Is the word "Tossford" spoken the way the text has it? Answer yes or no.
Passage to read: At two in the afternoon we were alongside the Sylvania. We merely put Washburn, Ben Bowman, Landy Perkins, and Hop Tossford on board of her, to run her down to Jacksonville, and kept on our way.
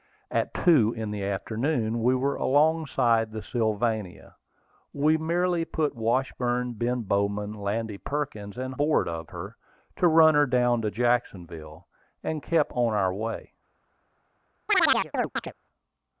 no